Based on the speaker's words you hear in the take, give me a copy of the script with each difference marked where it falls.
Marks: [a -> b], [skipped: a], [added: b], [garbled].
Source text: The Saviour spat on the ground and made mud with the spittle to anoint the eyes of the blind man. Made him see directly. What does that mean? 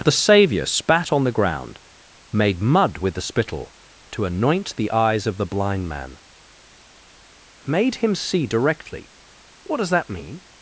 The Saviour spat on the ground [skipped: and] made mud with the spittle to anoint the eyes of the blind man. Made him see directly. What does that mean?